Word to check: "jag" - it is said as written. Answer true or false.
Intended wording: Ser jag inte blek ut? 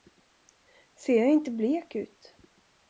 true